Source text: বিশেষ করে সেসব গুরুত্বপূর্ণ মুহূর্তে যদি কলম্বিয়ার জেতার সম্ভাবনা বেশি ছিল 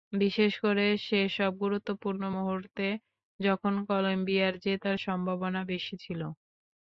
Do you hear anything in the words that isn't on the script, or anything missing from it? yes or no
yes